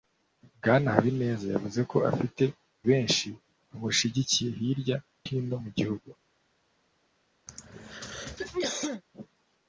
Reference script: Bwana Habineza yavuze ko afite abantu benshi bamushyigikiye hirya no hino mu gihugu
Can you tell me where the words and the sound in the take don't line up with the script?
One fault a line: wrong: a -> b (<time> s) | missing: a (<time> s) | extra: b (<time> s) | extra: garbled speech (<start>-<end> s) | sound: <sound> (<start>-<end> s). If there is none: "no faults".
missing: abantu (2.4 s)
missing: no (5.0 s)
sound: throat clearing (7.5-9.0 s)